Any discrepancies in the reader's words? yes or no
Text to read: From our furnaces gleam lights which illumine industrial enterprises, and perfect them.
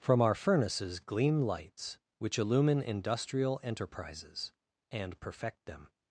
no